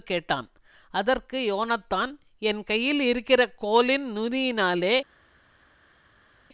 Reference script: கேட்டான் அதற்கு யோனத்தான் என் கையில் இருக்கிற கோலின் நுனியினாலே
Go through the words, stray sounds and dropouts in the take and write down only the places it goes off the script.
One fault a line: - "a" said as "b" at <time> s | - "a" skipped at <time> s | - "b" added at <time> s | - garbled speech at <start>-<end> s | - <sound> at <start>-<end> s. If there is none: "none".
none